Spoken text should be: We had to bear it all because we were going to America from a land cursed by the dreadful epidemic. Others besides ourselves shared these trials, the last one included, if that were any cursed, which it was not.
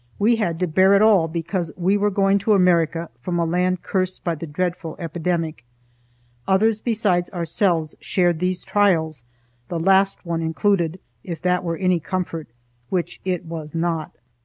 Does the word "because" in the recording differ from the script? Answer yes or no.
no